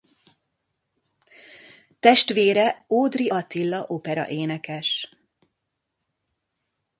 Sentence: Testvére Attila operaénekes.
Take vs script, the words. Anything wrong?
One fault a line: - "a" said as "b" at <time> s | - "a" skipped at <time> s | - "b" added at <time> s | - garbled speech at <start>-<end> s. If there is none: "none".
- "Ódry" added at 2.9 s